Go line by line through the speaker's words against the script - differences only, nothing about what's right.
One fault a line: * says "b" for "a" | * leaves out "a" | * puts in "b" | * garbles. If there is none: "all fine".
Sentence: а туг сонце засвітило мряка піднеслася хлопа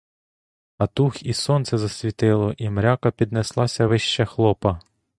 * puts in "і"
* puts in "і"
* puts in "вище"